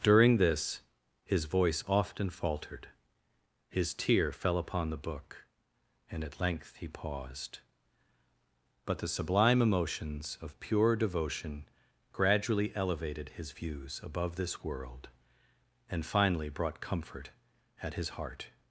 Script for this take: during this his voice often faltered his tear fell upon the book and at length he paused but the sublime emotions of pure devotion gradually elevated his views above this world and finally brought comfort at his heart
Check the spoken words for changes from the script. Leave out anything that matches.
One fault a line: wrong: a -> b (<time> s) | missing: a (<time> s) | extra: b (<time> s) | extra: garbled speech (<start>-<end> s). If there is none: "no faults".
no faults